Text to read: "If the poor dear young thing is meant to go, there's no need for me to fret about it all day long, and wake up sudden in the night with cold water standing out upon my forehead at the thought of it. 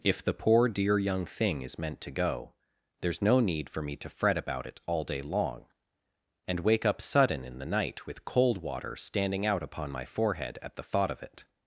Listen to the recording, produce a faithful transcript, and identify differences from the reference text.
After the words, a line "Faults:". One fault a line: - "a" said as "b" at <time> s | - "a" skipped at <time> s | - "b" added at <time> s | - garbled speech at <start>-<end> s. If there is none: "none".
"If the poor dear young thing is meant to go, there's no need for me to fret about it all day long, and wake up sudden in the night with cold water standing out upon my forehead at the thought of it.
Faults:
none